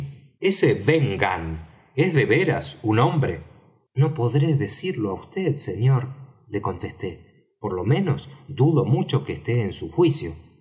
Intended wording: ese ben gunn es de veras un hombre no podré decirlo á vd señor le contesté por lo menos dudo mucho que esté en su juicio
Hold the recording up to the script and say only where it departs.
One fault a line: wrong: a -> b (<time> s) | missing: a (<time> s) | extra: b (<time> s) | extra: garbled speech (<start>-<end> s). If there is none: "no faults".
no faults